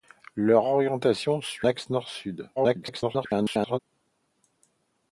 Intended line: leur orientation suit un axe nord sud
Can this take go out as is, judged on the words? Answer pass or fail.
fail